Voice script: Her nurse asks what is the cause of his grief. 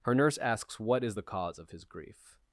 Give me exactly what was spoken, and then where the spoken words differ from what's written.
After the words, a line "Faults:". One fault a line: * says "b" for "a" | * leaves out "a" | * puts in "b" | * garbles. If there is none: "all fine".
Her nurse asks what is the cause of his grief.
Faults:
all fine